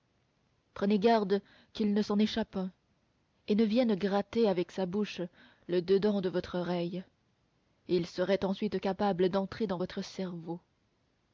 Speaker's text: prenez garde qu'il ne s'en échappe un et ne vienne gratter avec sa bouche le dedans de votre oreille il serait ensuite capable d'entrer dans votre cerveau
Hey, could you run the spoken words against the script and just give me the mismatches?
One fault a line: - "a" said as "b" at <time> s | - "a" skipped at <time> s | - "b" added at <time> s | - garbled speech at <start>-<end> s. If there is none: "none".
none